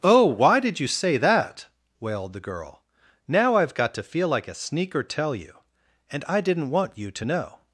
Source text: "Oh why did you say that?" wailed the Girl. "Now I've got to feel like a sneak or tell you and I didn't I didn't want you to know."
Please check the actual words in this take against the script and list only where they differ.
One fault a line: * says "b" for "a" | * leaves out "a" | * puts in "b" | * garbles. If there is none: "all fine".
* leaves out "I didn't"